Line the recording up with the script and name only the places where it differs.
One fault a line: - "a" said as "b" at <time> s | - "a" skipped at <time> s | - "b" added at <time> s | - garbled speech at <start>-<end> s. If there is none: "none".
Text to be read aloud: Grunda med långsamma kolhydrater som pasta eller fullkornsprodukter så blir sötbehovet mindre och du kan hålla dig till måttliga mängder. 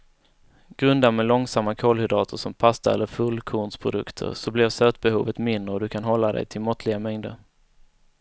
none